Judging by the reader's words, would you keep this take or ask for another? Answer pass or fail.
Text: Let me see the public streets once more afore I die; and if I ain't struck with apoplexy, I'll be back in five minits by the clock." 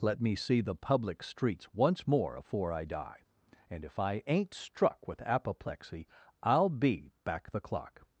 fail